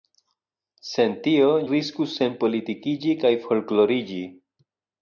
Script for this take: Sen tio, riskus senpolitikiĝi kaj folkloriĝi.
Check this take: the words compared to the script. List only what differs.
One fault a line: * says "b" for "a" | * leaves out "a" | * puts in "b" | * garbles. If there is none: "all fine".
all fine